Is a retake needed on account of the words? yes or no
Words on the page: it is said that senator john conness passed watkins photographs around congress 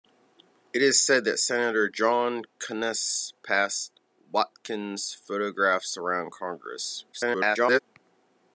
yes